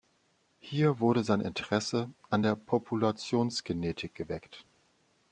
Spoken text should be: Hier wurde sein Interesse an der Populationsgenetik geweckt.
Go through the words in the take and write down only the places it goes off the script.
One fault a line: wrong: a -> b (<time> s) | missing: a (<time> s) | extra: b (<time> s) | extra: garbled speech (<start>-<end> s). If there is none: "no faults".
no faults